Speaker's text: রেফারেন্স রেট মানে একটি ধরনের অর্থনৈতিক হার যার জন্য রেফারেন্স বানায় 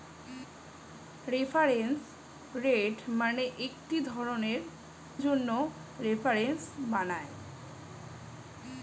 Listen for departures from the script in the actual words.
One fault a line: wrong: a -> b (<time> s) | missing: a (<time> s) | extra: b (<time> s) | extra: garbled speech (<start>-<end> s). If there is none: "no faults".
missing: অর্থনৈতিক হার যার (4.6 s)